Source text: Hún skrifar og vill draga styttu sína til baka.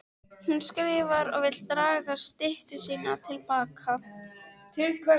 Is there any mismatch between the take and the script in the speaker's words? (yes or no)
no